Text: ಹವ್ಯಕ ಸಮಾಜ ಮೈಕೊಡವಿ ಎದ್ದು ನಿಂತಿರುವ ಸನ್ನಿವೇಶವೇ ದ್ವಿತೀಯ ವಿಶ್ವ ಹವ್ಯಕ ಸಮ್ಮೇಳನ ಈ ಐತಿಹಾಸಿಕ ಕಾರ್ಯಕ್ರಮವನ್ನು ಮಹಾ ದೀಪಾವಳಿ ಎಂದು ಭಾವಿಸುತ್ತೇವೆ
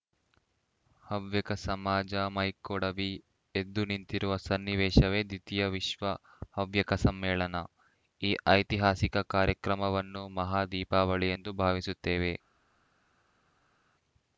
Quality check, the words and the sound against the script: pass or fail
pass